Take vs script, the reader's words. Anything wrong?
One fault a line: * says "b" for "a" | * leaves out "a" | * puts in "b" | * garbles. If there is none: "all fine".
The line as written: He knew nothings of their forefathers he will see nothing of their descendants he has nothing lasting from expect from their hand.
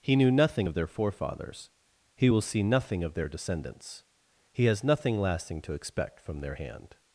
* says "nothing" for "nothings"
* says "to" for "from"